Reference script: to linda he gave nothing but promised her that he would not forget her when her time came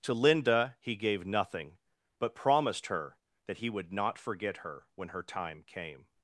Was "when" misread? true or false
false